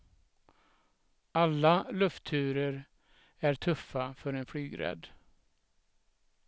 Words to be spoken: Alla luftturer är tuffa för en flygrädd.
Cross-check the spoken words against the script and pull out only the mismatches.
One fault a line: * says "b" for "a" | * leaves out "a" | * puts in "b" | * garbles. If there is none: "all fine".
all fine